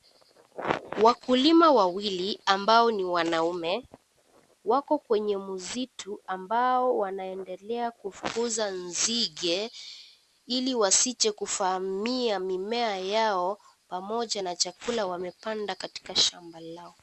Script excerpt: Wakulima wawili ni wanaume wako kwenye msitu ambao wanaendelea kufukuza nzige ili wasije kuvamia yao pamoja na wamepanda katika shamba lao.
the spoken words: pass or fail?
fail